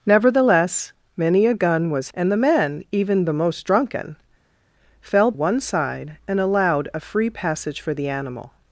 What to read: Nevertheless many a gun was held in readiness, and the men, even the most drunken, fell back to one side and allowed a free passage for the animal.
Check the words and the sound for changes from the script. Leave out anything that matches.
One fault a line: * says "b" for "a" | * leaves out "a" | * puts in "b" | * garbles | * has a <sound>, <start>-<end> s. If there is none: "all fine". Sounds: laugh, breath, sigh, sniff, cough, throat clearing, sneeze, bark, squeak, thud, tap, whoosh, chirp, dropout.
* leaves out "held in readiness"
* leaves out "back to"